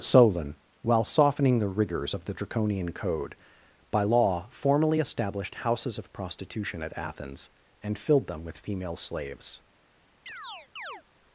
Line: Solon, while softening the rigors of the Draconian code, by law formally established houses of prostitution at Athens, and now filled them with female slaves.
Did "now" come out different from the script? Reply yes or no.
yes